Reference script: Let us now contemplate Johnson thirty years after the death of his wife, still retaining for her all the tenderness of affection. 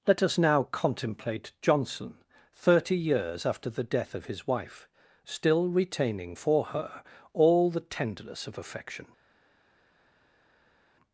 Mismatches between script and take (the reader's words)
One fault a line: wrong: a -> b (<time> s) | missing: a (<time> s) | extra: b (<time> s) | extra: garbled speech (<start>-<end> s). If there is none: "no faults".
no faults